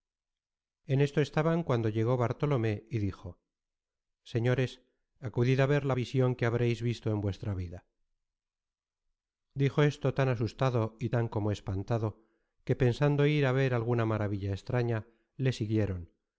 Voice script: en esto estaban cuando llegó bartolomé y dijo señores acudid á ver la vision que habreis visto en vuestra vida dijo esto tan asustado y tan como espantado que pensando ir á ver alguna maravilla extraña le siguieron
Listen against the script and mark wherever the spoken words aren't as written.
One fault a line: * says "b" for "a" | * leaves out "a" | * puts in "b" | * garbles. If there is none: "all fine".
all fine